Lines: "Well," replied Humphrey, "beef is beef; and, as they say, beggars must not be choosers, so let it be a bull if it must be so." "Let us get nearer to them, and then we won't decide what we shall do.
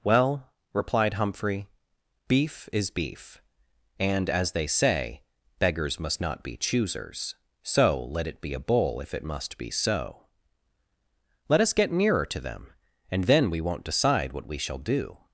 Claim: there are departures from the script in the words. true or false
false